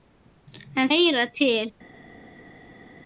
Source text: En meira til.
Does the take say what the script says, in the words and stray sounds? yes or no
yes